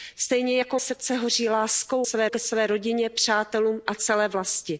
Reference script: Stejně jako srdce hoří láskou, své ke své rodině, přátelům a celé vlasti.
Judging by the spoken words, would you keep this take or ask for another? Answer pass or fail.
pass